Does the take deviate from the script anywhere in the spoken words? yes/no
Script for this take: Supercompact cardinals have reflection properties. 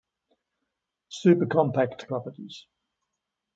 yes